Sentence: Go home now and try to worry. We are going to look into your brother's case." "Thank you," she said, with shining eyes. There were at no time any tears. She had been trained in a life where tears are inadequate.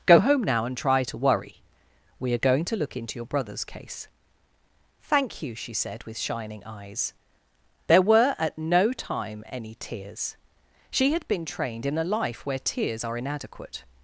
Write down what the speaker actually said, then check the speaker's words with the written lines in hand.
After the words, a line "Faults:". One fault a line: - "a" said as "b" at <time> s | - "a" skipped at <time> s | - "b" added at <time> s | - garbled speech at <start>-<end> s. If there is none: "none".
Go home now and try to worry. We are going to look into your brother's case." "Thank you," she said, with shining eyes. There were at no time any tears. She had been trained in a life where tears are inadequate.
Faults:
none